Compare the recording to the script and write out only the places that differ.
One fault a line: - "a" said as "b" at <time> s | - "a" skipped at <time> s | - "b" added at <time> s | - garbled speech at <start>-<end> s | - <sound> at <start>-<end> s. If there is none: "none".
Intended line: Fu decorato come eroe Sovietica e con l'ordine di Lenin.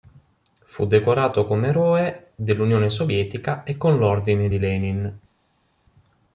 - "dell'Unione" added at 2.3 s